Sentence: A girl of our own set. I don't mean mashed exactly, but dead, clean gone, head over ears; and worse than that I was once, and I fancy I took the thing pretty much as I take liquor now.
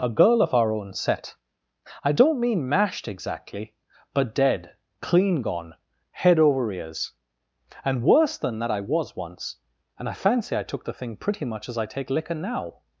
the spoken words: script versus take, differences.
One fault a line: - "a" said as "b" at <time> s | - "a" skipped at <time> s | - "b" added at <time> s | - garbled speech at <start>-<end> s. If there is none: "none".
none